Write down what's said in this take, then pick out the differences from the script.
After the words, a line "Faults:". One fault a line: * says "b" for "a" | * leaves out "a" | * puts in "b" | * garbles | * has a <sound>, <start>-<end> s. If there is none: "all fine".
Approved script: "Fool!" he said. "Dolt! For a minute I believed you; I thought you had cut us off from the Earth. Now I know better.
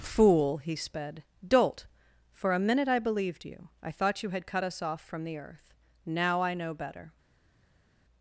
"Fool!" he sped. "Dolt! For a minute I believed you; I thought you had cut us off from the Earth. Now I know better.
Faults:
* says "sped" for "said"